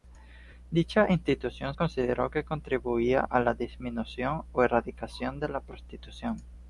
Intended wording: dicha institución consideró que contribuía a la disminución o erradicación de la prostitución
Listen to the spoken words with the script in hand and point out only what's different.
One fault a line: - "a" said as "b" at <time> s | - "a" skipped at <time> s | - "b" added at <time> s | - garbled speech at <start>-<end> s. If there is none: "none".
none